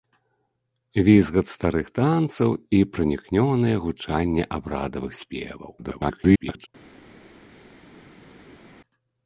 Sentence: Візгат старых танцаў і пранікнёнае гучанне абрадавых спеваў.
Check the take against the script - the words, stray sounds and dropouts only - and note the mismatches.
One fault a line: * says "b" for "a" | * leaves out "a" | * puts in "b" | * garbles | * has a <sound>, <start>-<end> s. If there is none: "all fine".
* garbles